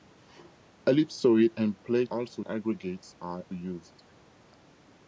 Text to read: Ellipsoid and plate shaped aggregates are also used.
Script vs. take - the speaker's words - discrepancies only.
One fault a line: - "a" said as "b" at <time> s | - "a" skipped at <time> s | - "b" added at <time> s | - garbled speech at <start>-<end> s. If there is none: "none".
- "shaped" said as "also" at 2.1 s
- "also" skipped at 3.5 s